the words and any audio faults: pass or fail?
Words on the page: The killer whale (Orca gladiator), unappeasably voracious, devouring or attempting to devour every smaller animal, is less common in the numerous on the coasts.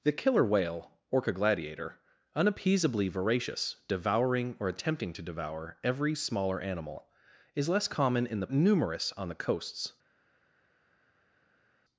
pass